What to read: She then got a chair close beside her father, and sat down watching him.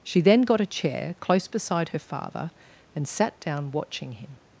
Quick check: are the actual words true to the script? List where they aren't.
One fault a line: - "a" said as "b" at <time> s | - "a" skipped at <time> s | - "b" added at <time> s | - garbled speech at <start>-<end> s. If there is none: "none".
none